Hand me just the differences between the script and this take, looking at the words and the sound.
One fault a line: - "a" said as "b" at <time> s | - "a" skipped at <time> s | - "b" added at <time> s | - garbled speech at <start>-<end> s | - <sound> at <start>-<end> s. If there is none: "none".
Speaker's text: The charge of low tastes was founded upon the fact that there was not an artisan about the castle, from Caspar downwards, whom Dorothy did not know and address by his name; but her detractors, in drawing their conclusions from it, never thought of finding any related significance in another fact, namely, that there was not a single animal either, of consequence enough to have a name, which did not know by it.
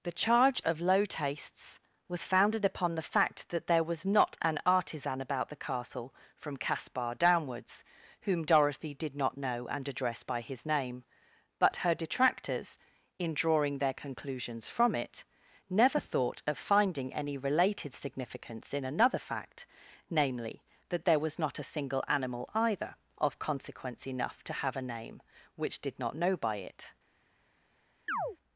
- chirp at 28.1-28.4 s